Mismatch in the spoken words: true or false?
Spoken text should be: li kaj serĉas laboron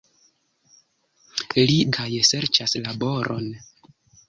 false